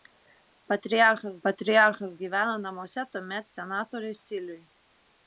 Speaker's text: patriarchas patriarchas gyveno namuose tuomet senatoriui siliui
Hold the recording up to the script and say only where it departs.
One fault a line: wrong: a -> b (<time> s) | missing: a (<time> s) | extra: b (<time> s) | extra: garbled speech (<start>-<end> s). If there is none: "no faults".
no faults